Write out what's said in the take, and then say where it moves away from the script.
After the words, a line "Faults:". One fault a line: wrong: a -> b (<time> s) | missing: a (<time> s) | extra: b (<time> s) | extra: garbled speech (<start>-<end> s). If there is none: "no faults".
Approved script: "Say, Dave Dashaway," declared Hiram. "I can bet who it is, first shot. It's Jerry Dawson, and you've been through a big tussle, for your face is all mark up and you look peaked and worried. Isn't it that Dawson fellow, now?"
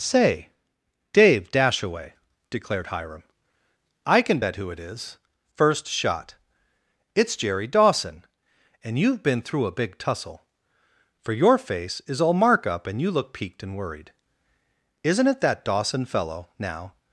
"Say, Dave Dashaway," declared Hiram. "I can bet who it is, first shot. It's Jerry Dawson, and you've been through a big tussle, for your face is all mark up and you look peaked and worried. Isn't it that Dawson fellow, now?"
Faults:
no faults